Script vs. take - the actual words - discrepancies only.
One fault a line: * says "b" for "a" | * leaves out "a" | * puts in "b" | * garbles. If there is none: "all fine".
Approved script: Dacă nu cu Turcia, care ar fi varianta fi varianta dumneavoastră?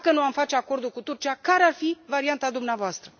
* puts in "am face acordul"
* leaves out "fi varianta"